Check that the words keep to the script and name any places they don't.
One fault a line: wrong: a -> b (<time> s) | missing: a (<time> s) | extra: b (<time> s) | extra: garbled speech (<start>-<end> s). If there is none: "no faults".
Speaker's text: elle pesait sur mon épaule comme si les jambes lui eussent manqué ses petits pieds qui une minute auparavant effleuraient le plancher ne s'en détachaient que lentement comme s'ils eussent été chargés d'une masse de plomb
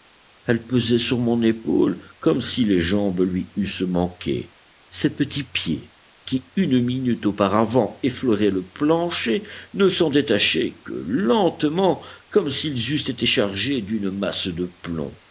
no faults